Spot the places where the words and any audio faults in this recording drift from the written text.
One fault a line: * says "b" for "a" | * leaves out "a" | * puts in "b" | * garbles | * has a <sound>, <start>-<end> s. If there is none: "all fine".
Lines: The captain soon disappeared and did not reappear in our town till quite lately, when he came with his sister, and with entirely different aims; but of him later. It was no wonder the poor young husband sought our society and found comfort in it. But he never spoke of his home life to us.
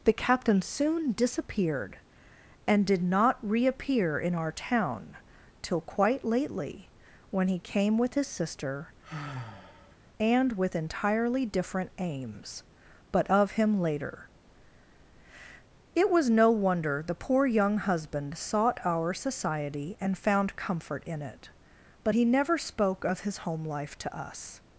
* has a sigh, 9.0-10.0 s